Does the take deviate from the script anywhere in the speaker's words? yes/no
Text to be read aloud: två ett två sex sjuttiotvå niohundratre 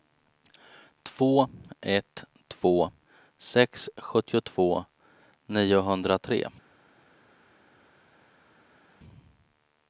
no